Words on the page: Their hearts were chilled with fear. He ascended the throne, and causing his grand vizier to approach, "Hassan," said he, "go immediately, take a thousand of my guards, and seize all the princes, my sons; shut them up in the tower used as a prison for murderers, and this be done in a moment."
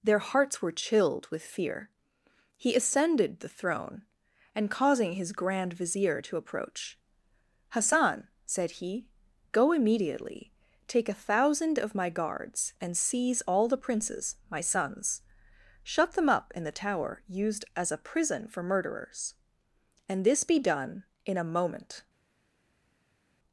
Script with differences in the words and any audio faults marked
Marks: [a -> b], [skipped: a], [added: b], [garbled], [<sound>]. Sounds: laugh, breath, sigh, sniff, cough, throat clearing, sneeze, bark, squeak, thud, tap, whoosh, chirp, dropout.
Their hearts were chilled with fear. He ascended the throne, and causing his grand vizier to approach, "Hassan," said he, "go immediately, take a thousand of my guards, and seize all the princes, my sons; shut them up in the tower used as a prison for murderers, and this be done in a moment."